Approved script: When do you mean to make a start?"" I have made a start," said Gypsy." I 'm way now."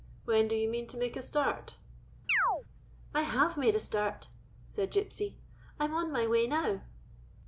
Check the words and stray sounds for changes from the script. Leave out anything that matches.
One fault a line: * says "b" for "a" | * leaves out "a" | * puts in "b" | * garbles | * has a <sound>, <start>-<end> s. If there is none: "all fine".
* has a chirp, 2.3-2.6 s
* puts in "on my"